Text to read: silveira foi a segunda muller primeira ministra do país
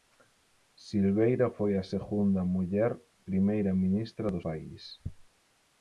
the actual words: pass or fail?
pass